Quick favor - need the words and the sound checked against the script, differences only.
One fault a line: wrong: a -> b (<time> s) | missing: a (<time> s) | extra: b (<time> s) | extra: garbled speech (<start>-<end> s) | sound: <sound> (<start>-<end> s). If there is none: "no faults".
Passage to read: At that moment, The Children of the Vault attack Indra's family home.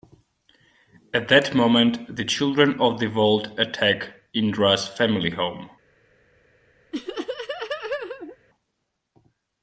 sound: laugh (6.9-8.4 s)